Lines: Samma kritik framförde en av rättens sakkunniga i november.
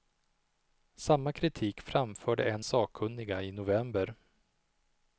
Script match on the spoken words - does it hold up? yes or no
no